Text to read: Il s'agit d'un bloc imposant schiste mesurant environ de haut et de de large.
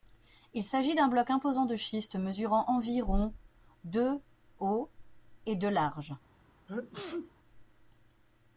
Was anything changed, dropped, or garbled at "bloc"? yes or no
no